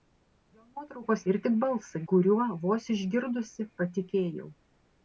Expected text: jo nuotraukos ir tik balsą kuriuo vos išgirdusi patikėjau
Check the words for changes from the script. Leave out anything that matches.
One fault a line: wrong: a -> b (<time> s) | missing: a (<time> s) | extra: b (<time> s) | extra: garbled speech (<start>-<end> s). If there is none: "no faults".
no faults